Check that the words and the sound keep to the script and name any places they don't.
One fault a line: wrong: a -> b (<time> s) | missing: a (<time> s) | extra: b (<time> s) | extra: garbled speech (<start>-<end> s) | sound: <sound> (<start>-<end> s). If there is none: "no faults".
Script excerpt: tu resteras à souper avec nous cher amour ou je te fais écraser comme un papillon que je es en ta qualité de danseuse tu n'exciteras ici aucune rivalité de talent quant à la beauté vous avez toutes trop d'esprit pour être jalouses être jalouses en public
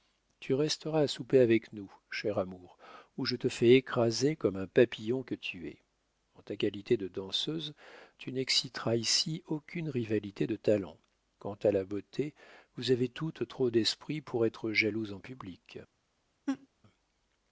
wrong: je -> tu (5.3 s)
missing: être jalouses (15.1 s)
sound: laugh (16.5-16.7 s)